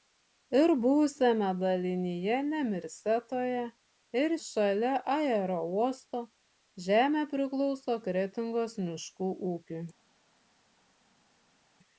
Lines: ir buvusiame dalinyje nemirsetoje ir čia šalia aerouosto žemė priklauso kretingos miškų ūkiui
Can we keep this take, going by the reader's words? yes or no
no